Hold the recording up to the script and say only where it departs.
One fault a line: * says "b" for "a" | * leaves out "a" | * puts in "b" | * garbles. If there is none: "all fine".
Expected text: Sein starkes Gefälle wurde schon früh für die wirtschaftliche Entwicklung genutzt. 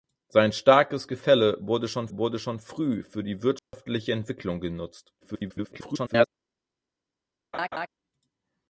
* puts in "wurde schon"
* garbles